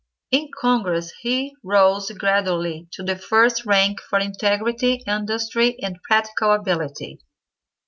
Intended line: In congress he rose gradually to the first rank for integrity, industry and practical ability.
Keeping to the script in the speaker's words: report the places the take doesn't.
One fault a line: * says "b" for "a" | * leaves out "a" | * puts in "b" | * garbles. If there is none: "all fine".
all fine